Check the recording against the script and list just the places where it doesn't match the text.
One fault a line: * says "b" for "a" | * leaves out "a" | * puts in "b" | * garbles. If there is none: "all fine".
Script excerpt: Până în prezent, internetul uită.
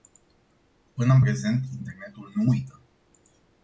* puts in "nu"